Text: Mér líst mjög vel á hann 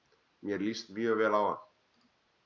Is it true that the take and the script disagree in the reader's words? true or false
false